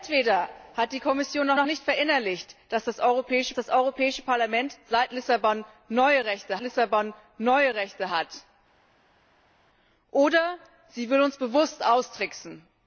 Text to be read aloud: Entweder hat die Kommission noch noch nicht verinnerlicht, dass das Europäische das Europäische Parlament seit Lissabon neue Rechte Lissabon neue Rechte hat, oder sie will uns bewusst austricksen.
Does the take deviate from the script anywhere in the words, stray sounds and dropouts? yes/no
no